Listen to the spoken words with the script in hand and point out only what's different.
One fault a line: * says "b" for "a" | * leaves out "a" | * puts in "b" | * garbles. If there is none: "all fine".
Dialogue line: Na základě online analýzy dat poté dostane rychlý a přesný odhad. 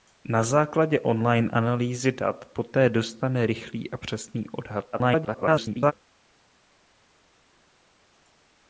* garbles